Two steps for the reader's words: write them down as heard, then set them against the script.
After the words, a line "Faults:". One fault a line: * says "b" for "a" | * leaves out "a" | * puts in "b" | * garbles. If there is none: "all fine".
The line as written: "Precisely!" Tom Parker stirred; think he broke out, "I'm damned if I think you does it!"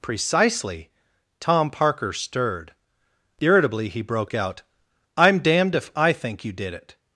"Precisely!" Tom Parker stirred; irritably he broke out, "I'm damned if I think you did it!"
Faults:
* says "irritably" for "think"
* says "did" for "does"